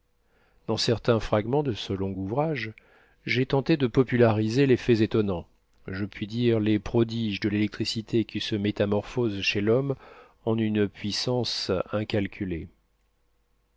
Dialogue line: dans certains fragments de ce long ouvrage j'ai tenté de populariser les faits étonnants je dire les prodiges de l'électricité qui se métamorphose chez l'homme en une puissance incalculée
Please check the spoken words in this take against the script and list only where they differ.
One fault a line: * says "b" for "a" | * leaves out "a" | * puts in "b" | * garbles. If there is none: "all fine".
* puts in "puis"